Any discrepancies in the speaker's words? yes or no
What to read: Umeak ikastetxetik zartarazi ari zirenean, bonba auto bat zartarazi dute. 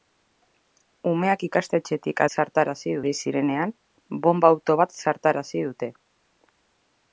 no